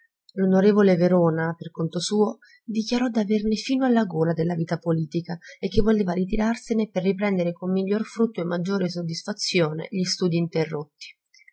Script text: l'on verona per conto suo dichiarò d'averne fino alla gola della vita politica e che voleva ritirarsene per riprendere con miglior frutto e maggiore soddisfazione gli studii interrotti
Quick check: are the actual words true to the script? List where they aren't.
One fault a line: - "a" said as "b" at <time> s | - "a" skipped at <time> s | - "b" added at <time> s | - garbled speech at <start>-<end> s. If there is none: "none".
none